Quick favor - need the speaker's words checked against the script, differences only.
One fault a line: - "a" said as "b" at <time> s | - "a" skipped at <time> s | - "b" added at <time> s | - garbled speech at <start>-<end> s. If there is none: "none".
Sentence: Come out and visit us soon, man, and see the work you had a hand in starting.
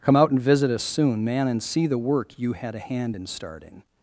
none